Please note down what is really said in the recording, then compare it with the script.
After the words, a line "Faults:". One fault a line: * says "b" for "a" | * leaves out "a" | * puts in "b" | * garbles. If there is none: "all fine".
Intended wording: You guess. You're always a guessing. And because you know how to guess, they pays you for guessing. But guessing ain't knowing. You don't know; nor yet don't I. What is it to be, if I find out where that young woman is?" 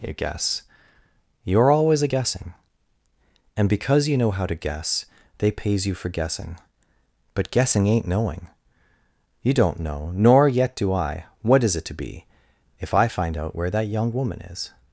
You guess. You're always a guessing. And because you know how to guess, they pays you for guessing. But guessing ain't knowing. You don't know; nor yet do I. What is it to be, if I find out where that young woman is?"
Faults:
* says "do" for "don't"